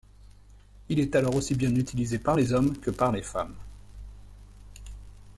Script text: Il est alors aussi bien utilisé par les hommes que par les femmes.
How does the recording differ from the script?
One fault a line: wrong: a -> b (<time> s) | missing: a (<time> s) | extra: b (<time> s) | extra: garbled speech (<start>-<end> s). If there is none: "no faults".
no faults